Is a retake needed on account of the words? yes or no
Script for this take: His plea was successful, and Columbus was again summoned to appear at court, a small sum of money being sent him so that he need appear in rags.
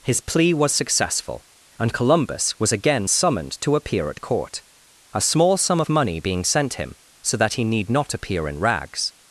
yes